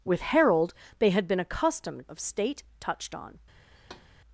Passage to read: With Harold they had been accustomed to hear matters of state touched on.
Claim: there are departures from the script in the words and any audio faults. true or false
true